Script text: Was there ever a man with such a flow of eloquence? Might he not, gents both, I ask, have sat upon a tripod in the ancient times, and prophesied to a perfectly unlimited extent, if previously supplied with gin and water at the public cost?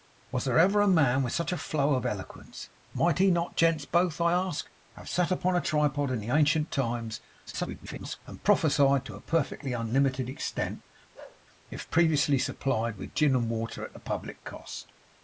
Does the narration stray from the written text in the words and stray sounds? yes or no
yes